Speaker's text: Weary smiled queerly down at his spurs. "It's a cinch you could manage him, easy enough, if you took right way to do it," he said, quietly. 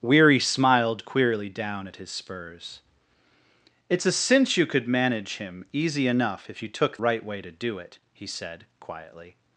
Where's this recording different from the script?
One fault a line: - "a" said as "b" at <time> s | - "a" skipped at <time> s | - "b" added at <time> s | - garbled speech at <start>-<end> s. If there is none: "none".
none